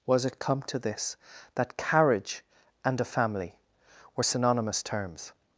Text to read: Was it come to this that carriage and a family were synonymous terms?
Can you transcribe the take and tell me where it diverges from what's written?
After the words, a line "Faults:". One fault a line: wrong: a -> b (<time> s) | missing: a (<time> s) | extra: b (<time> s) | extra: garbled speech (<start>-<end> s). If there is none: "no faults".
Was it come to this that carriage and a family were synonymous terms?
Faults:
no faults